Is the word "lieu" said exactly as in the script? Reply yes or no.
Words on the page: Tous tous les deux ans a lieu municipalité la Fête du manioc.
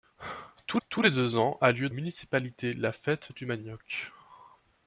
yes